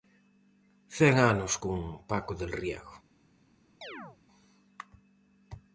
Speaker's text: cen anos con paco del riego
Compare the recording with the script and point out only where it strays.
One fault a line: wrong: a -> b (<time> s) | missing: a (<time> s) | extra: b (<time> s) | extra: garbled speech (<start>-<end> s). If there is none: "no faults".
no faults